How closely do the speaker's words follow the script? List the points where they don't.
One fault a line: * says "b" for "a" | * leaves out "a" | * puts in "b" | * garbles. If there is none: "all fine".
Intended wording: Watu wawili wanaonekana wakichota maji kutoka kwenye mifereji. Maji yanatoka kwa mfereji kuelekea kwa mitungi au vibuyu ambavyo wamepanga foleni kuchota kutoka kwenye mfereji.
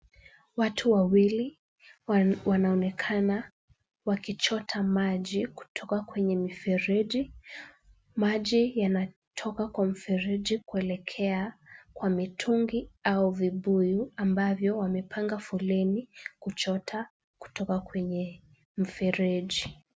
all fine